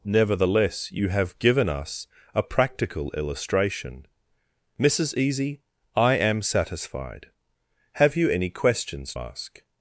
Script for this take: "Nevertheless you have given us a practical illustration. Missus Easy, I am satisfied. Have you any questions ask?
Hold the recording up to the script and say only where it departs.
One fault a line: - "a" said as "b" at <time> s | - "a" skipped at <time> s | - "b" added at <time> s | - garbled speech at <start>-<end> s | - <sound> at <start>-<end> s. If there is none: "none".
none